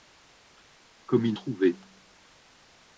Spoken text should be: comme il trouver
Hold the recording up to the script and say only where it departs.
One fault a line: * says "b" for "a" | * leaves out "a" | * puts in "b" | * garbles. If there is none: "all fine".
all fine